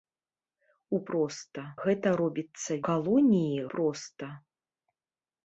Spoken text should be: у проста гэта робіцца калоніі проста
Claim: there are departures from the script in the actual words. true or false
false